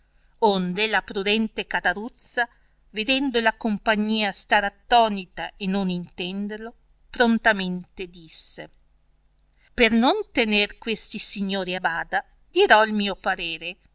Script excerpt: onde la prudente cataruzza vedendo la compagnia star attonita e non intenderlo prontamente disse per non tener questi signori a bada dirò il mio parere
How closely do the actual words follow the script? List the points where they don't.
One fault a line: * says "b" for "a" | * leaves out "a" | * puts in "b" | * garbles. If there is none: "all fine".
all fine